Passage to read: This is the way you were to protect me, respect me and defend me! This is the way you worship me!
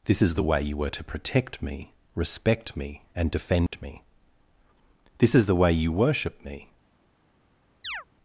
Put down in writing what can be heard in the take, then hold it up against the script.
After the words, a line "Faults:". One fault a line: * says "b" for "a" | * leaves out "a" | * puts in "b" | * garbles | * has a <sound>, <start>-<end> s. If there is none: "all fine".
This is the way you were to protect me, respect me and defend me! This is the way you worship me!
Faults:
* has a dropout, 3.7-3.7 s
* has a chirp, 7.8-8.0 s